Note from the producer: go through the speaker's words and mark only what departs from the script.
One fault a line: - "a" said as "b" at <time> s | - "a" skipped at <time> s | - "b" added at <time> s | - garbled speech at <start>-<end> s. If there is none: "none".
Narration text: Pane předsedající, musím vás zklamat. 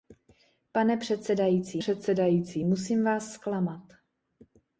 - "předsedající" added at 1.7 s